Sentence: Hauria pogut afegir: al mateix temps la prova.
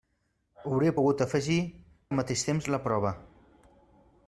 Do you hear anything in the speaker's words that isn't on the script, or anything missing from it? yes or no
no